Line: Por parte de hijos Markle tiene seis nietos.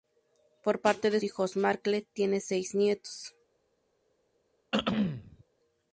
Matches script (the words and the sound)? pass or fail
fail